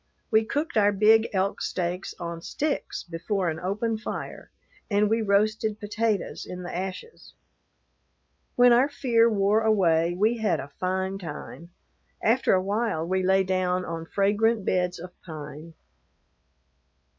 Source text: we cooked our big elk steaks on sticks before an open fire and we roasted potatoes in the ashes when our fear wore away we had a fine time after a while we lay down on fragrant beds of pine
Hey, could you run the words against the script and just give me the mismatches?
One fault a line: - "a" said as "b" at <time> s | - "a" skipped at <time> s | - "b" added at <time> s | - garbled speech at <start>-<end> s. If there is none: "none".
none